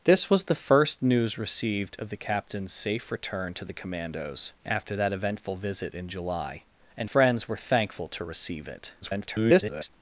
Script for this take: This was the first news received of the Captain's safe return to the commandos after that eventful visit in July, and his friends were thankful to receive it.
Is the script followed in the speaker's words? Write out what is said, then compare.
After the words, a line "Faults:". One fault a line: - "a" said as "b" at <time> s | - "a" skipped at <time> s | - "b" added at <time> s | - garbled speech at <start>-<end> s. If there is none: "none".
This was the first news received of the Captain's safe return to the commandos after that eventful visit in July, and friends were thankful to receive it. [garbled]
Faults:
- "his" skipped at 7.1 s
- garbled speech at 9.0-9.9 s